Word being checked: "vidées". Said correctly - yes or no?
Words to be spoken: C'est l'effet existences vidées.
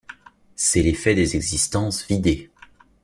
yes